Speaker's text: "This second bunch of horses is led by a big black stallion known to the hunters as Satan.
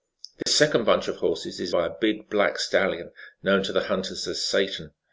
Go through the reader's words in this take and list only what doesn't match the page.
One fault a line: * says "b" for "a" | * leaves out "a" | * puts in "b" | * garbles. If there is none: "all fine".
* leaves out "led"